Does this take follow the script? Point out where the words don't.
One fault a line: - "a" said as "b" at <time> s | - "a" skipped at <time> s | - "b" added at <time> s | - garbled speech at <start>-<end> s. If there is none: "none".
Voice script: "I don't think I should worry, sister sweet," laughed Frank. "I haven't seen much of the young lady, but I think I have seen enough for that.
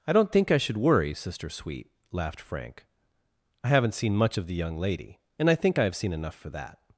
- "but" said as "and" at 5.4 s